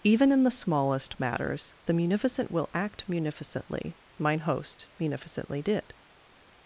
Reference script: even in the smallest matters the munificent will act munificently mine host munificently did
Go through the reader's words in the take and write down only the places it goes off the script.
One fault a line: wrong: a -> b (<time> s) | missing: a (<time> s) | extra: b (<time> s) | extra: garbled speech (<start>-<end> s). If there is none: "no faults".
no faults